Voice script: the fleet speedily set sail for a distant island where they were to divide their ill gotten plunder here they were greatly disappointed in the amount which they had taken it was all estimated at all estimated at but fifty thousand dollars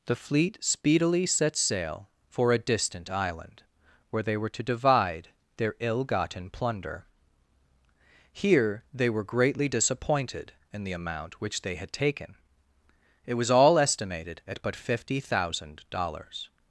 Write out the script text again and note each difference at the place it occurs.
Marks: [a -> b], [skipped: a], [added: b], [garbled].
the fleet speedily set sail for a distant island where they were to divide their ill gotten plunder here they were greatly disappointed in the amount which they had taken it was all estimated at [skipped: all estimated at] but fifty thousand dollars